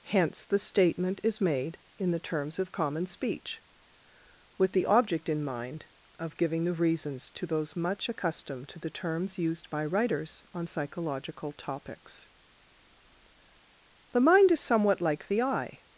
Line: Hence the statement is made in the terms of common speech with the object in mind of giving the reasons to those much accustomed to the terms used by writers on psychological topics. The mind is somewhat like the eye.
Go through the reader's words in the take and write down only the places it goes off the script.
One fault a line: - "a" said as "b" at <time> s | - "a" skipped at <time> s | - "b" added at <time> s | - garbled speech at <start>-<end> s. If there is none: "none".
none